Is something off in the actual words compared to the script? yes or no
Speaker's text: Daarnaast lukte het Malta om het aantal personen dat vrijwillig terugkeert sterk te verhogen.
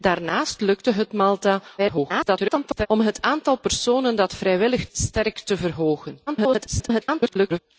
yes